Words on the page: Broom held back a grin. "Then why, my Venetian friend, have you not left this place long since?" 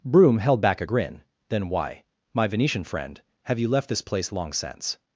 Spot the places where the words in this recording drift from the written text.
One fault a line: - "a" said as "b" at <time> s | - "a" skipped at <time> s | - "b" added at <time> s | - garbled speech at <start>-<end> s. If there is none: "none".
- "not" skipped at 3.7 s